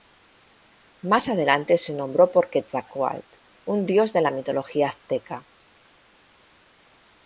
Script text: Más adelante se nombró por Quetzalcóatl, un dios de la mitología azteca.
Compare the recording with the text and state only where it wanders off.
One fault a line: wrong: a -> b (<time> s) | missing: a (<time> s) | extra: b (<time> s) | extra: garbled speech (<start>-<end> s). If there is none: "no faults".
no faults